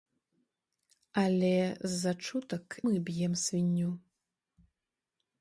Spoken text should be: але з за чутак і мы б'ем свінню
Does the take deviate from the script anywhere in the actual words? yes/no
yes